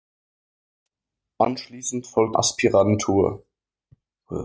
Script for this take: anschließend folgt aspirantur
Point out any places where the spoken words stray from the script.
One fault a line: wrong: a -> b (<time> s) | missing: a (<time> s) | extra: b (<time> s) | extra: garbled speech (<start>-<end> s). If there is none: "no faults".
no faults